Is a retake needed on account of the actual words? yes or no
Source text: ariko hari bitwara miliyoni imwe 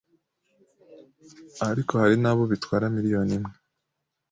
yes